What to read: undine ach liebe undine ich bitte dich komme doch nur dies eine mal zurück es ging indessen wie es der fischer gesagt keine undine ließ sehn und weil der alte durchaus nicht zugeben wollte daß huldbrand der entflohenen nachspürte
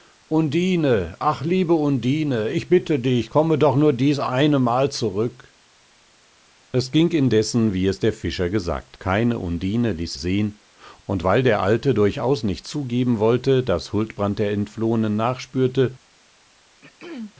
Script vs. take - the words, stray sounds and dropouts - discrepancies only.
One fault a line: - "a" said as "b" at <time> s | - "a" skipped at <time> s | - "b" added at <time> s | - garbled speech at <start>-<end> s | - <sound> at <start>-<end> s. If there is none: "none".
- throat clearing at 16.8-17.3 s